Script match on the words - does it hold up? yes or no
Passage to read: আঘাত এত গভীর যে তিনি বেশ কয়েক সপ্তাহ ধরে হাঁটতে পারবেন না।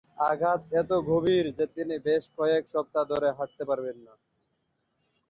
yes